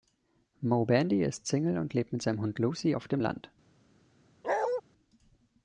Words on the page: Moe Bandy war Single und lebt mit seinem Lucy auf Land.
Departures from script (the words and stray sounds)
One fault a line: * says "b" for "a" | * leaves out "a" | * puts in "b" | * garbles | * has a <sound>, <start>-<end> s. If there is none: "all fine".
* says "ist" for "war"
* puts in "Hund"
* puts in "dem"
* has a bark, 4.4-4.8 s